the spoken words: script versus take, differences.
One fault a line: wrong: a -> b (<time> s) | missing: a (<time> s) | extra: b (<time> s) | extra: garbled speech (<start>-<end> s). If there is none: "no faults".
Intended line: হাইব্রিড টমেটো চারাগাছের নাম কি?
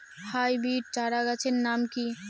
missing: টমেটো (0.9 s)